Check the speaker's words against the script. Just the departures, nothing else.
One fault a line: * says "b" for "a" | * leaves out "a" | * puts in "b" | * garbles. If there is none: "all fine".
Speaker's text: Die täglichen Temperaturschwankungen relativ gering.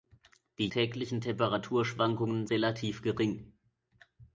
all fine